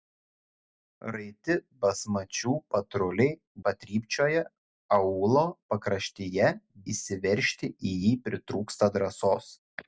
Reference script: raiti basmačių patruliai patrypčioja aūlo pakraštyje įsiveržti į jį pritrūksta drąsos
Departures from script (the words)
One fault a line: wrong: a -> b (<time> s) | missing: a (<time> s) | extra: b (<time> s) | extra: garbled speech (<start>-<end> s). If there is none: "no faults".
no faults